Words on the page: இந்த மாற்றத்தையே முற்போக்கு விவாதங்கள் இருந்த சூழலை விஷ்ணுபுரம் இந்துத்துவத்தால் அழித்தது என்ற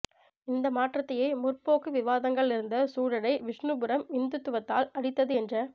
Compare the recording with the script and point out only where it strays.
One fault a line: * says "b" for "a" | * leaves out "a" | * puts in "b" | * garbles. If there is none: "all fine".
all fine